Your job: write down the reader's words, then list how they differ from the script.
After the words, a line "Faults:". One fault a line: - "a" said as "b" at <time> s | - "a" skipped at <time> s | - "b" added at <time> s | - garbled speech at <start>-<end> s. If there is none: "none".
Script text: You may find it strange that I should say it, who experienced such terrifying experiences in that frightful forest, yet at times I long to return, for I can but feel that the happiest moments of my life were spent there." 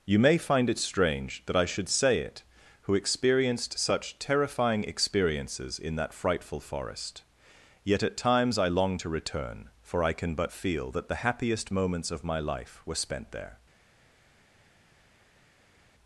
You may find it strange that I should say it, who experienced such terrifying experiences in that frightful forest, yet at times I long to return, for I can but feel that the happiest moments of my life were spent there."
Faults:
none